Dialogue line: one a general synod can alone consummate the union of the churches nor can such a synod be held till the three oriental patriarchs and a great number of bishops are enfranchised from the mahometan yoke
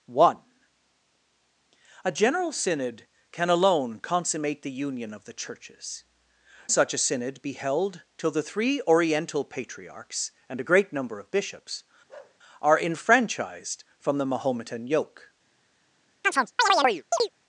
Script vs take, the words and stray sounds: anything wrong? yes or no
yes